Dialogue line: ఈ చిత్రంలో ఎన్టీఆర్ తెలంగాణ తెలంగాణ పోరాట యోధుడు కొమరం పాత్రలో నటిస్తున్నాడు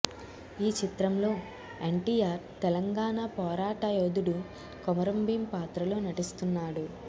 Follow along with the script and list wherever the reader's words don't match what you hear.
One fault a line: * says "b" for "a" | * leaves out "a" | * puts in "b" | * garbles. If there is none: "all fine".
* leaves out "తెలంగాణ"
* puts in "భీం"